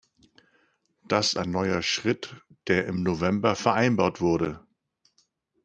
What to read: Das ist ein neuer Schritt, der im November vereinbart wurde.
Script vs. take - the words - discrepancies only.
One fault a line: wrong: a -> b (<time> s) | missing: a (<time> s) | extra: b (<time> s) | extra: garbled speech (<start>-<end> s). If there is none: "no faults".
missing: ist (1.4 s)